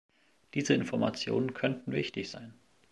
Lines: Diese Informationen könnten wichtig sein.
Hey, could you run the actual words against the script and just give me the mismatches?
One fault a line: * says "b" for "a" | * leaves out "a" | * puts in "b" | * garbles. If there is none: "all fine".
all fine